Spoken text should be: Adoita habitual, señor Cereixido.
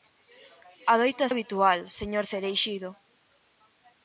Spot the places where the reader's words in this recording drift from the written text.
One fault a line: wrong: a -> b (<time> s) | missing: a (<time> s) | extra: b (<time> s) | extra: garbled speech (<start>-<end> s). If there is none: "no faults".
no faults